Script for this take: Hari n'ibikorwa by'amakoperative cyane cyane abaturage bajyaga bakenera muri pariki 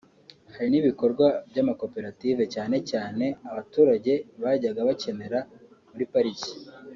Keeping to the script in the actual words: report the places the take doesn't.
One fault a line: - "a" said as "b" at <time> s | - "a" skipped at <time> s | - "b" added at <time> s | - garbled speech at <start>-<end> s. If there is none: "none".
none